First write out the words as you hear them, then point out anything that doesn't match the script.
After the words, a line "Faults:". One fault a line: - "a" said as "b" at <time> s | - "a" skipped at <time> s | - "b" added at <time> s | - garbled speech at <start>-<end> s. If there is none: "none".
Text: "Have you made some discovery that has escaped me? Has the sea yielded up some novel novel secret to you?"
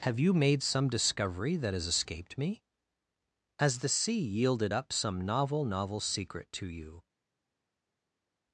"Have you made some discovery that has escaped me? Has the sea yielded up some novel novel secret to you?"
Faults:
none